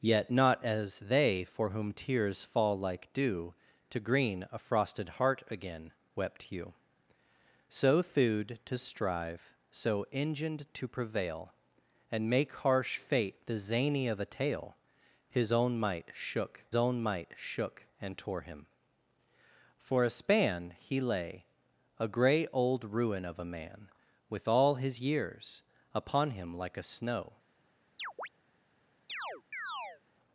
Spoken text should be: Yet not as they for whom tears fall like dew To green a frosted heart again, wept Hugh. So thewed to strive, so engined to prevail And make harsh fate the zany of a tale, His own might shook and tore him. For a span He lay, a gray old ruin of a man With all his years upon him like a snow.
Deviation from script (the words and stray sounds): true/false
true